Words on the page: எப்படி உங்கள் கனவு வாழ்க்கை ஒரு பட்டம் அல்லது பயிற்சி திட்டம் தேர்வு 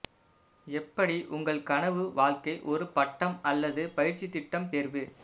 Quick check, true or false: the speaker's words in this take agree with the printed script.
true